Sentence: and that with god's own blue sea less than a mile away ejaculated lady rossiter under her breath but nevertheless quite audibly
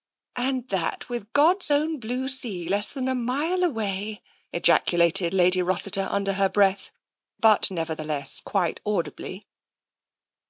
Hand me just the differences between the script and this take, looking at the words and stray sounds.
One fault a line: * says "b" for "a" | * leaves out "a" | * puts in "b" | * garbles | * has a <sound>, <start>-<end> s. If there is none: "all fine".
all fine